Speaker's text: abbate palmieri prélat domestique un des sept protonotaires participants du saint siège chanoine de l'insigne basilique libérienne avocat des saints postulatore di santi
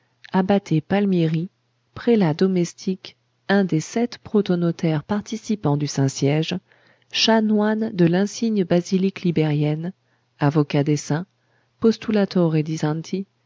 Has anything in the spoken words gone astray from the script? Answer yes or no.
no